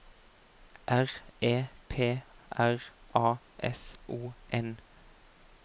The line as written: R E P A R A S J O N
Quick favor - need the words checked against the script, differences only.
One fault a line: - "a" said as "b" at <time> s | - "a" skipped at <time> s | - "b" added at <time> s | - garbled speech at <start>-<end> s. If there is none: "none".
- "A" skipped at 2.2 s
- "J" skipped at 4.0 s